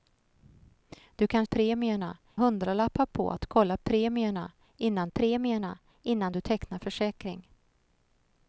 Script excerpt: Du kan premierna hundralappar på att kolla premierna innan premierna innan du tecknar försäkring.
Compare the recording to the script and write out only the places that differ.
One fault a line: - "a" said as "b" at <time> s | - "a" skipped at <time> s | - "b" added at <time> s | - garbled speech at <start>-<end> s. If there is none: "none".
none